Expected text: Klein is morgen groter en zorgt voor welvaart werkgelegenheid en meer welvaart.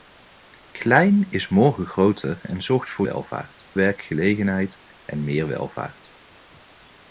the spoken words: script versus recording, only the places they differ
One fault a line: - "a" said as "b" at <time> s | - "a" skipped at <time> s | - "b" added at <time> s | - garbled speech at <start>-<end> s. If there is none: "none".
none